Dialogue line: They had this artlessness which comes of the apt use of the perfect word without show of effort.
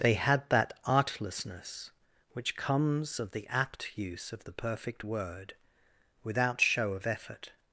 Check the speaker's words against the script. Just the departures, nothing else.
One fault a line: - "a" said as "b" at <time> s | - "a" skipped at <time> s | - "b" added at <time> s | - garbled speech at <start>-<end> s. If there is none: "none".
- "this" said as "that" at 0.5 s